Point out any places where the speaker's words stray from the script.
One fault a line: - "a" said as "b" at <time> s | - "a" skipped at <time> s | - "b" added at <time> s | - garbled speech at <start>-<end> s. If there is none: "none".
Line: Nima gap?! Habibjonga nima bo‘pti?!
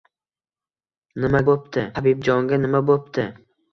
- "gap" said as "bo‘pti" at 1.5 s